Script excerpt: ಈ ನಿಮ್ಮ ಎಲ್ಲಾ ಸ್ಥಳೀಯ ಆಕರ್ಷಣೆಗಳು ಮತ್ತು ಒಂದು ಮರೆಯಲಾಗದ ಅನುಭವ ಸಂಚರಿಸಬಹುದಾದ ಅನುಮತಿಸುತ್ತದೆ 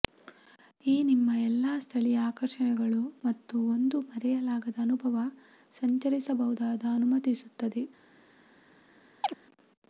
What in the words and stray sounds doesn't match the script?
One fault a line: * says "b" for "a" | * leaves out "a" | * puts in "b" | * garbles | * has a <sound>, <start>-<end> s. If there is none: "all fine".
* has a chirp, 9.2-9.3 s